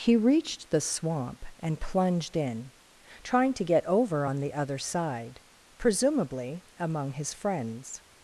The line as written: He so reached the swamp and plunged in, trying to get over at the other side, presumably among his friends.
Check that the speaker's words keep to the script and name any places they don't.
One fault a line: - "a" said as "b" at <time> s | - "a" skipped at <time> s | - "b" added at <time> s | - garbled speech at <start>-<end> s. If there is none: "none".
- "so" skipped at 0.1 s
- "at" said as "on" at 4.2 s